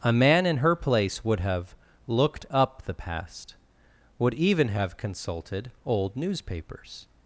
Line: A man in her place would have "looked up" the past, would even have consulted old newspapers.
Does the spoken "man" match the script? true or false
true